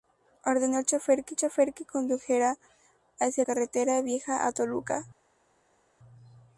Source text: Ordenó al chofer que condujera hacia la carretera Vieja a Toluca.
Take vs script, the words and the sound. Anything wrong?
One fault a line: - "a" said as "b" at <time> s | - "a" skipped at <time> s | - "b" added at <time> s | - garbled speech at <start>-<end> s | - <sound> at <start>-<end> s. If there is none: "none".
- "chofer que" added at 1.4 s
- "la" skipped at 3.4 s